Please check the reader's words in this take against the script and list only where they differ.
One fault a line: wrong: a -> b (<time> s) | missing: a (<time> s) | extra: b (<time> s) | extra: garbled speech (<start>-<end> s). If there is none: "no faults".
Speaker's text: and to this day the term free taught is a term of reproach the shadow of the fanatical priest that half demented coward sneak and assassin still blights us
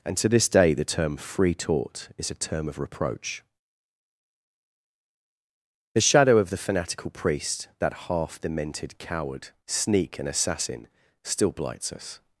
no faults